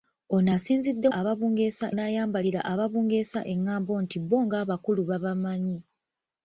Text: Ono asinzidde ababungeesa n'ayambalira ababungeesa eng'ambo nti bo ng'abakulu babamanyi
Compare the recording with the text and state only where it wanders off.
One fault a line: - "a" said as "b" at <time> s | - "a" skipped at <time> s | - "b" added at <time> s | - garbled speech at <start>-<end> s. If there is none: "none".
none